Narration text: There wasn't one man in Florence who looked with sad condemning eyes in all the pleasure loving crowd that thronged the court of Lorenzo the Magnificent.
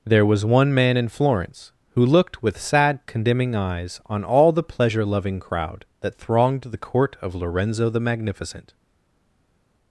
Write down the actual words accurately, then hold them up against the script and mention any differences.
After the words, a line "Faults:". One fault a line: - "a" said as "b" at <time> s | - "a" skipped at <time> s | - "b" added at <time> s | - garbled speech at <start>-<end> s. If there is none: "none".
There was one man in Florence who looked with sad condemning eyes on all the pleasure loving crowd that thronged the court of Lorenzo the Magnificent.
Faults:
- "wasn't" said as "was" at 0.2 s
- "in" said as "on" at 4.1 s